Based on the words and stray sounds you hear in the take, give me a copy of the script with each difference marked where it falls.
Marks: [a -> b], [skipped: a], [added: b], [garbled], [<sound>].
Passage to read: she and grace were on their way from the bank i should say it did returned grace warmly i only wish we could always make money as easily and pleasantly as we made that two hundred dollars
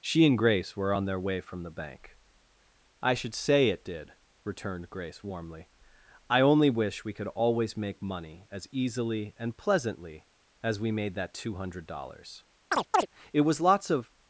she and grace were on their way from the bank i should say it did returned grace warmly i only wish we could always make money as easily and pleasantly as we made that two hundred dollars [chirp] [added: it was lots of]